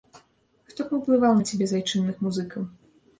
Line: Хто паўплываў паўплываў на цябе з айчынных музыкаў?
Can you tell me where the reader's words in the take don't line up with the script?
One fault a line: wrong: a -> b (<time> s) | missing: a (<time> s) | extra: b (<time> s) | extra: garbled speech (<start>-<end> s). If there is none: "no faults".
missing: паўплываў (1.3 s)